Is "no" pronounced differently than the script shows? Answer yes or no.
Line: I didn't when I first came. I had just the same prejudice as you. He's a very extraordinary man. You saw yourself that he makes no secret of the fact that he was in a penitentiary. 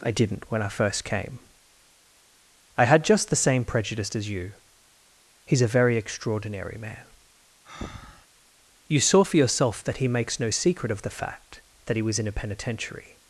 no